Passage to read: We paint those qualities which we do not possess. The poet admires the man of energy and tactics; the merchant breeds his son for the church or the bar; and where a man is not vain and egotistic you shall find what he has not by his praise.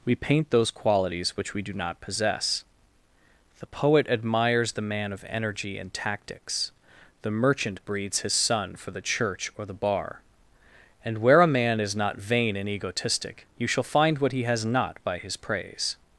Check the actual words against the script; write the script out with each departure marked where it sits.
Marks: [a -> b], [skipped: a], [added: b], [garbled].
We paint those qualities which we do not possess. The poet admires the man of energy and tactics; the merchant breeds his son for the church or the bar; and where a man is not vain and egotistic you shall find what he has not by his praise.